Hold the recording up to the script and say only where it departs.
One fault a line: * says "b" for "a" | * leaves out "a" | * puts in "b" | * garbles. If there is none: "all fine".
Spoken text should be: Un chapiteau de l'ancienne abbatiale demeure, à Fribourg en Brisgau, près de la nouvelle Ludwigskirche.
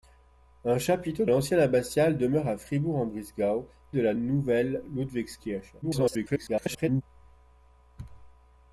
* leaves out "de"
* leaves out "près"
* garbles